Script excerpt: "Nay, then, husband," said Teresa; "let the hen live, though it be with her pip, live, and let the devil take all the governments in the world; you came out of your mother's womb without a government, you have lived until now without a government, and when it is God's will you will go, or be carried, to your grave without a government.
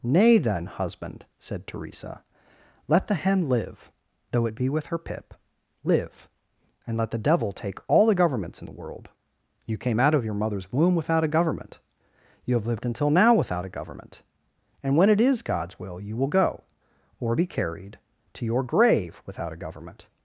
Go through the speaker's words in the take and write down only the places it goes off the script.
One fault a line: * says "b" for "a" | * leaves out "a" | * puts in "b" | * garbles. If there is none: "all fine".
all fine